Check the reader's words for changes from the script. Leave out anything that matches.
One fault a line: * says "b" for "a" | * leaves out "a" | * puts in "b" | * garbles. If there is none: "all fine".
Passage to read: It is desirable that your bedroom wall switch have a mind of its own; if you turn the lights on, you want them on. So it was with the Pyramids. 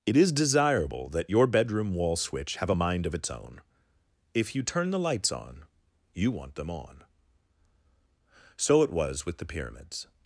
all fine